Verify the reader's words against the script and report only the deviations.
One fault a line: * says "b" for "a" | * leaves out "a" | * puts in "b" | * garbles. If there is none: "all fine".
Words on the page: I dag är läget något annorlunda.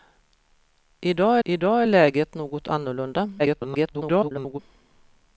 * puts in "I dag"
* garbles